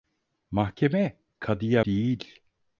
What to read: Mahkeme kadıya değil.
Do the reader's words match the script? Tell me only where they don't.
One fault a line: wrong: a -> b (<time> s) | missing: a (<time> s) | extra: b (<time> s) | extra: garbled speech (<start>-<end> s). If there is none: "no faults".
no faults